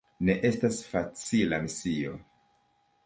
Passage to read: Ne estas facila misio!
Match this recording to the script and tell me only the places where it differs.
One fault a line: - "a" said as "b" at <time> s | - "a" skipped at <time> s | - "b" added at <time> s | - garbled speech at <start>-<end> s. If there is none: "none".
none